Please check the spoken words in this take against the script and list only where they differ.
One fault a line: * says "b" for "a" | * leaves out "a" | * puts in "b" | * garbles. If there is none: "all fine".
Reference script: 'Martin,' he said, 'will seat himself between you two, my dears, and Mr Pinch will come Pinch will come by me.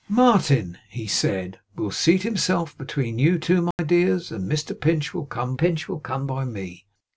all fine